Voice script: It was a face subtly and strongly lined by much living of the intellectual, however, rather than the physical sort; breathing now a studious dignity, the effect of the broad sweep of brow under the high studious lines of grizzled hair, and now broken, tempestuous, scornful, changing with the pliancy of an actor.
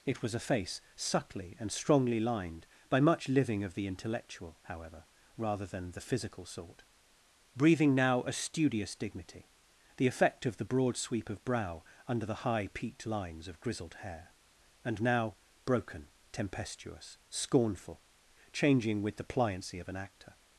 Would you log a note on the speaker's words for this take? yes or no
yes